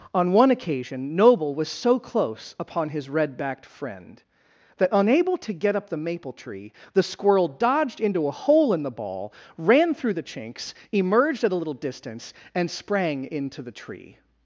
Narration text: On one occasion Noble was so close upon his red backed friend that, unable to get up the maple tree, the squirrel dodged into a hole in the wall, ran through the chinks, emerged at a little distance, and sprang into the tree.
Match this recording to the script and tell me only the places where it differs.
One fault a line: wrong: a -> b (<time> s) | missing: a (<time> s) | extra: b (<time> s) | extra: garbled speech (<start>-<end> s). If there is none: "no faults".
wrong: wall -> ball (8.9 s)